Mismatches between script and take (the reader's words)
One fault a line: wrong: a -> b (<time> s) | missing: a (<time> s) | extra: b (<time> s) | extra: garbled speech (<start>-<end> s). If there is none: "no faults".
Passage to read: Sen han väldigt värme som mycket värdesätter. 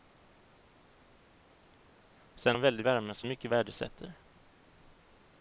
no faults